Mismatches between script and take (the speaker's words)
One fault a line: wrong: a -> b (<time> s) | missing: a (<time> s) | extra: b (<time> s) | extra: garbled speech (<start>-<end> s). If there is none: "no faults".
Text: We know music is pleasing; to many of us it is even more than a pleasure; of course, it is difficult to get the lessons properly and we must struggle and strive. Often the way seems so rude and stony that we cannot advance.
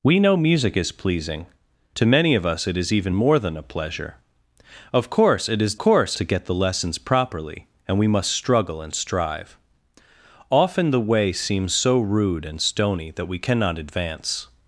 wrong: difficult -> course (5.8 s)